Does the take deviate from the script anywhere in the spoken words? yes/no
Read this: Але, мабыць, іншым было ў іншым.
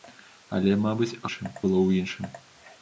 no